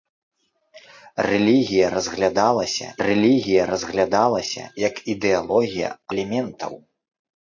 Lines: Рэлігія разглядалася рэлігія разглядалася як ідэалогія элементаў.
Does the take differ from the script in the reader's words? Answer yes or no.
no